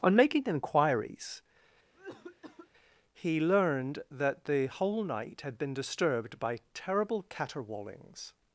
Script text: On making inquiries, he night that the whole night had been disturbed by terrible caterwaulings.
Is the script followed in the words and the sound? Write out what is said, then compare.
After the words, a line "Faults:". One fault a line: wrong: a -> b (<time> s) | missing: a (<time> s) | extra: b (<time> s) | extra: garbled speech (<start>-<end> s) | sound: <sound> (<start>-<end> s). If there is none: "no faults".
On making inquiries, he learned that the whole night had been disturbed by terrible caterwaulings.
Faults:
sound: cough (1.9-2.7 s)
wrong: night -> learned (3.4 s)